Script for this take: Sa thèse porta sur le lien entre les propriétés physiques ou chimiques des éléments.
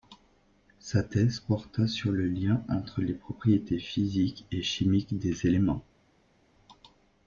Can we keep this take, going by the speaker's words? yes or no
no